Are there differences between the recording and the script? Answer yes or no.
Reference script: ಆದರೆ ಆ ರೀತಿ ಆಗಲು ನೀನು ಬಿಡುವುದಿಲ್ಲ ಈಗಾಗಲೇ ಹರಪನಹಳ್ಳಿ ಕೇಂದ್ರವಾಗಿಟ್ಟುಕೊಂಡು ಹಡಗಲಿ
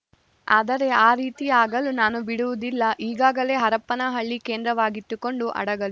yes